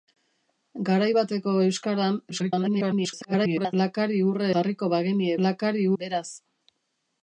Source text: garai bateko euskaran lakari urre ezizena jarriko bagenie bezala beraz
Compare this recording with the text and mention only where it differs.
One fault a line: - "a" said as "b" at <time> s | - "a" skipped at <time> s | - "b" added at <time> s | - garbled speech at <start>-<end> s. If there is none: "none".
- garbled speech at 2.3-3.7 s
- "ezizena" skipped at 4.5 s
- "bezala" said as "lakari" at 5.5 s